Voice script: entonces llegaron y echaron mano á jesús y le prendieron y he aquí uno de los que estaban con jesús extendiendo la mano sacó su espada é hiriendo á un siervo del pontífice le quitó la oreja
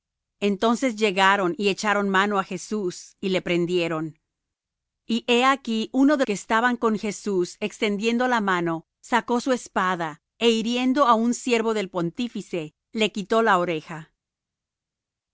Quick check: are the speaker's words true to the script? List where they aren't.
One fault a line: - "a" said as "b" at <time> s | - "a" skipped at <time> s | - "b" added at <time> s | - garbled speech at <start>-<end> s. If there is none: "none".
- "los" skipped at 6.2 s